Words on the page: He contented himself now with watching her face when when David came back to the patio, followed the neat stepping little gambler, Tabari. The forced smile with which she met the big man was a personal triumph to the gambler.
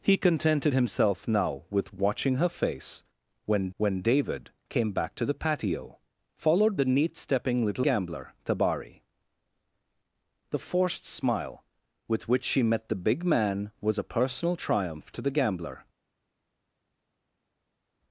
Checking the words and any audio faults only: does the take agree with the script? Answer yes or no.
yes